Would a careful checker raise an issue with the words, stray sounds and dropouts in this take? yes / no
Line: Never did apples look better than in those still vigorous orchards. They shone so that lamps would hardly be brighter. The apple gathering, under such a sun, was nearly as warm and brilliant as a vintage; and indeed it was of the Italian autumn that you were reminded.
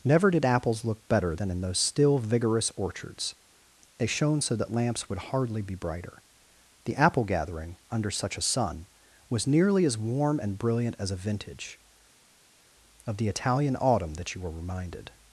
yes